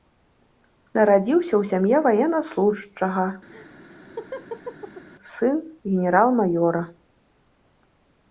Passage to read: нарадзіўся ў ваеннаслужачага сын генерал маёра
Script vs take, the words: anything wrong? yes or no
yes